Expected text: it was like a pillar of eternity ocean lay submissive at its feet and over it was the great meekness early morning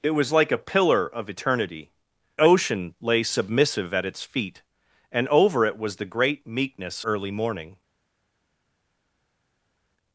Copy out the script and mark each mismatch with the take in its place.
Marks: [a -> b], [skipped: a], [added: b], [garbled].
it was like a pillar of eternity ocean lay submissive at its feet and over it was the great meekness early morning